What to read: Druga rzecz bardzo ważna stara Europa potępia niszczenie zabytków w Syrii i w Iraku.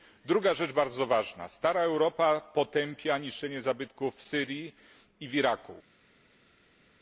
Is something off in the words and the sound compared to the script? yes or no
no